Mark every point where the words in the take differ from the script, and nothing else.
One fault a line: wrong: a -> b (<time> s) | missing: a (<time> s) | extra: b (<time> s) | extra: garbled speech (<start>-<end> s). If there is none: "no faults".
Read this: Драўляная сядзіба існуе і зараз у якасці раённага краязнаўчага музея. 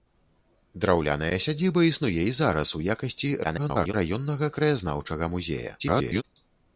extra: garbled speech (3.4-3.9 s)
extra: garbled speech (5.8-6.2 s)